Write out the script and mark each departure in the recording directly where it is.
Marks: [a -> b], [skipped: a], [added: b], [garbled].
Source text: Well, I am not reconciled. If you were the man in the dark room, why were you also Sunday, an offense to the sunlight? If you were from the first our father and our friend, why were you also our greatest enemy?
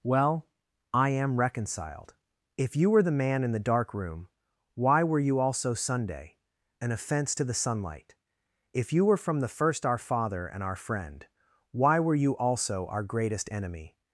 Well, I am [skipped: not] reconciled. If you were the man in the dark room, why were you also Sunday, an offense to the sunlight? If you were from the first our father and our friend, why were you also our greatest enemy?